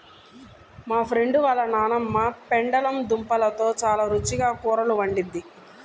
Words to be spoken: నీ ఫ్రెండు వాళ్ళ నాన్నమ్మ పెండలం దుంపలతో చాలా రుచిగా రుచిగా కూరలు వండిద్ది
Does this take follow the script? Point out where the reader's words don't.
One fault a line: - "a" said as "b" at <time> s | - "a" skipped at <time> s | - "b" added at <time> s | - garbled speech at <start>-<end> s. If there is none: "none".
- "నీ" said as "మా" at 0.9 s
- "రుచిగా" skipped at 4.5 s